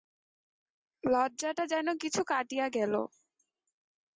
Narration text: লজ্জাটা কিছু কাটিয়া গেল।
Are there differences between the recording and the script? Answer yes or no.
yes